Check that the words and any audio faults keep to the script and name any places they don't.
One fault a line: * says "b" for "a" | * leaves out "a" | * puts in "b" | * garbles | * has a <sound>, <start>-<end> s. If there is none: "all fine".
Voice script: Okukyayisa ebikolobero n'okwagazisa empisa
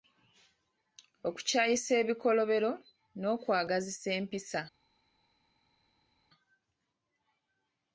all fine